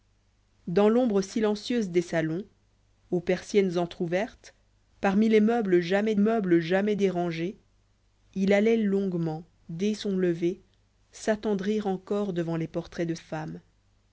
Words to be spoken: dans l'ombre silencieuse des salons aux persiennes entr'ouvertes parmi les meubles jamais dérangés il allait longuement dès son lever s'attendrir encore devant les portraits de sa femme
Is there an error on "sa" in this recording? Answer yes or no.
yes